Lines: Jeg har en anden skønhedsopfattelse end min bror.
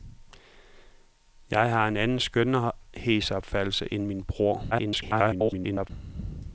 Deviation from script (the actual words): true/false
true